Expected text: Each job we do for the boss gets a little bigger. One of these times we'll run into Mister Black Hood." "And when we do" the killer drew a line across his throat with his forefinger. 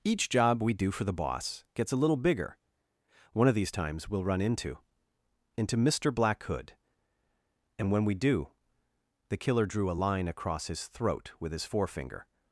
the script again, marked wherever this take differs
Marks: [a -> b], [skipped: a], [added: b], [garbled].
Each job we do for the boss gets a little bigger. One of these times we'll run into [added: into] Mister Black Hood." "And when we do" the killer drew a line across his throat with his forefinger.